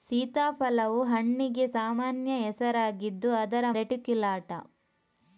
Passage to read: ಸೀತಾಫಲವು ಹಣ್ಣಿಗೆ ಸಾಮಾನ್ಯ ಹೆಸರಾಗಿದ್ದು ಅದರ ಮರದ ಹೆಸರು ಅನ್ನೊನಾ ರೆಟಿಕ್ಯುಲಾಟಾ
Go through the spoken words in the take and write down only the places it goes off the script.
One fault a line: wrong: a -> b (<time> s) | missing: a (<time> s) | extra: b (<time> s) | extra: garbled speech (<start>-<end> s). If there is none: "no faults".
missing: ಮರದ ಹೆಸರು ಅನ್ನೊನಾ (3.7 s)